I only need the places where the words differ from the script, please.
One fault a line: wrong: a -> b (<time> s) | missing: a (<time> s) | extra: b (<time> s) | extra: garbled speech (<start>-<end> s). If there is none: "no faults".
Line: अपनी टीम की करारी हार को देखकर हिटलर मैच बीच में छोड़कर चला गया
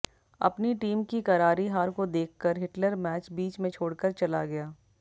no faults